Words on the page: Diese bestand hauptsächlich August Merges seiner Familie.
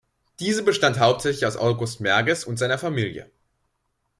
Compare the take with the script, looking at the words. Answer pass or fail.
fail